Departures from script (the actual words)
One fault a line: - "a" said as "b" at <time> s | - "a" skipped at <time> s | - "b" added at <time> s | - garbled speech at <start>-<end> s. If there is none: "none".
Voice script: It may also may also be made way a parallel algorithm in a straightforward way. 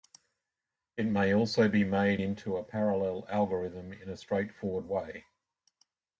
- "may also" skipped at 1.7 s
- "way" said as "into" at 2.2 s